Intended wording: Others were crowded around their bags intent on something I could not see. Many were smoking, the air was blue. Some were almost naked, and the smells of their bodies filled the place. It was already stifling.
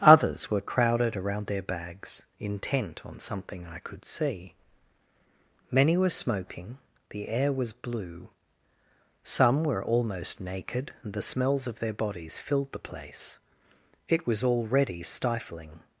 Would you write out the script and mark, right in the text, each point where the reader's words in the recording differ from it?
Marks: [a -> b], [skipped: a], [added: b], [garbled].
Others were crowded around their bags intent on something I could [skipped: not] see. Many were smoking, the air was blue. Some were almost naked, and the smells of their bodies filled the place. It was already stifling.